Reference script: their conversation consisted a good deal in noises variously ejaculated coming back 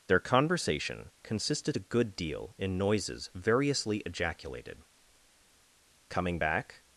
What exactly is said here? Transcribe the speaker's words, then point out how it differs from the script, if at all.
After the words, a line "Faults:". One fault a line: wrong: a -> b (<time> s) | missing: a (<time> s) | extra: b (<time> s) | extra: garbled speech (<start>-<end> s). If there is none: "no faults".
their conversation consisted a good deal in noises variously ejaculated coming back
Faults:
no faults